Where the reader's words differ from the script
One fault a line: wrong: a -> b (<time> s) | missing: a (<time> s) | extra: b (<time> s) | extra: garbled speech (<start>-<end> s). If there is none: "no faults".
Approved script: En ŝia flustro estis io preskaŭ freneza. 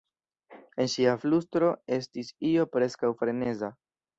no faults